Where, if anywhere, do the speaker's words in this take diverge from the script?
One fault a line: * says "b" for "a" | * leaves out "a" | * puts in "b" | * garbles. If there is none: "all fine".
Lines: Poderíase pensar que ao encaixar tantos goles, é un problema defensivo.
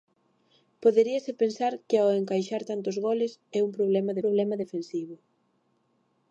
* puts in "problema"